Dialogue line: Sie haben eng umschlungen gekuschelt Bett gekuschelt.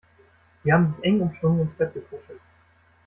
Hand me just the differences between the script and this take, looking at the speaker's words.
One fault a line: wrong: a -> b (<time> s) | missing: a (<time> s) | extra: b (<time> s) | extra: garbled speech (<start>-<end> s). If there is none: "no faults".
extra: sich (0.9 s)
wrong: gekuschelt -> ins (1.6 s)